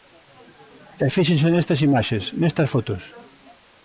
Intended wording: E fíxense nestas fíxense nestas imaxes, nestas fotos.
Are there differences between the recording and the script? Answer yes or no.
yes